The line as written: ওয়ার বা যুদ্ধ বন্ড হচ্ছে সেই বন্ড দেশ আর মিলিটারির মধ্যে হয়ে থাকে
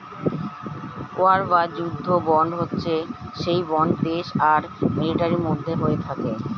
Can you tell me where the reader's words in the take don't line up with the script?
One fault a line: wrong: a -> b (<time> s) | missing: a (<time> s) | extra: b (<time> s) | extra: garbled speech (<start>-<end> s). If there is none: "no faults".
no faults